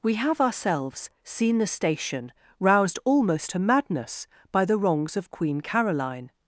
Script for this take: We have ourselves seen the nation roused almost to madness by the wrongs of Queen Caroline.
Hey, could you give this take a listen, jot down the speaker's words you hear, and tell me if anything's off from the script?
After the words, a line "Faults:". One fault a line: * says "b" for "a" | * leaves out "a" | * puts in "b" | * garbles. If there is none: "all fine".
We have ourselves seen the station roused almost to madness by the wrongs of Queen Caroline.
Faults:
* says "station" for "nation"